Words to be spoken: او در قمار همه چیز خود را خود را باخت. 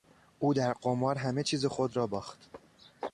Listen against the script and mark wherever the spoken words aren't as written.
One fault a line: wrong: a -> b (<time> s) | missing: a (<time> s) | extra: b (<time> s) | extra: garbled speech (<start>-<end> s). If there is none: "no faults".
missing: خود را (2.1 s)